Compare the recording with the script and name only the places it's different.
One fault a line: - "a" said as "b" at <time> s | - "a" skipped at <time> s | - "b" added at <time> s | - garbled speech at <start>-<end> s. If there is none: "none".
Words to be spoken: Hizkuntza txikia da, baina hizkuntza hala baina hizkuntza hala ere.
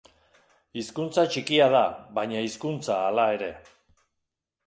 - "baina hizkuntza hala" skipped at 3.3 s